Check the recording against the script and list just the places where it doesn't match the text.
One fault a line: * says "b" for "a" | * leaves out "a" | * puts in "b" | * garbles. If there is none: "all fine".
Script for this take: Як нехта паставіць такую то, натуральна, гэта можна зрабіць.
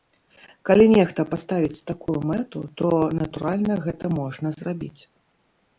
* says "Калі" for "Як"
* puts in "мэту"